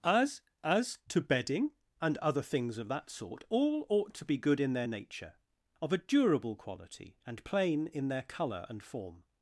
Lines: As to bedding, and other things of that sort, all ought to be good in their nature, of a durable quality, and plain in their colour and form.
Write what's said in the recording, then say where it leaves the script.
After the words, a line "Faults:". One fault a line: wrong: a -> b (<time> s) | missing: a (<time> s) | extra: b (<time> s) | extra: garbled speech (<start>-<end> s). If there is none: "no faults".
As as to bedding, and other things of that sort, all ought to be good in their nature, of a durable quality, and plain in their colour and form.
Faults:
extra: as (0.6 s)